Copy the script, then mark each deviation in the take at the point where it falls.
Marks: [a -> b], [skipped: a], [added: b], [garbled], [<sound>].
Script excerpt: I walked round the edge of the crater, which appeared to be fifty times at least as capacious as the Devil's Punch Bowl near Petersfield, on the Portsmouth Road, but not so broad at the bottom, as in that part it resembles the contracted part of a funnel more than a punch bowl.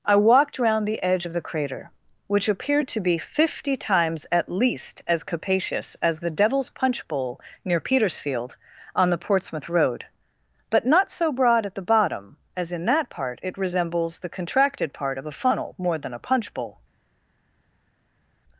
I walked round the edge of the crater, which appeared to be fifty times at least as capacious as the Devil's Punch Bowl near Petersfield, on the Portsmouth Road, but not so broad at the bottom, as in that part it resembles the contracted part of a funnel more than a punch bowl.